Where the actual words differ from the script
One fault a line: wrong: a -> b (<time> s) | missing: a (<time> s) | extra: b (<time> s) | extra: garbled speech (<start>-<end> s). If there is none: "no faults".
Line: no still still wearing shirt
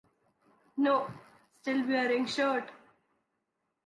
missing: still (1.9 s)